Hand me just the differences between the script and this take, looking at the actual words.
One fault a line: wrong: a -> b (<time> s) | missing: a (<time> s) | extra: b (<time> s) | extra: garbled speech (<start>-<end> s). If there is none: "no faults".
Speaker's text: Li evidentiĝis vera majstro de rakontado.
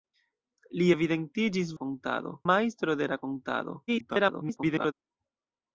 wrong: vera -> rakontado (1.7 s)
extra: garbled speech (3.9-4.9 s)